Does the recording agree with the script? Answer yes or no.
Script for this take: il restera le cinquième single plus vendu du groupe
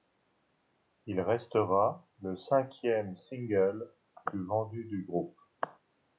yes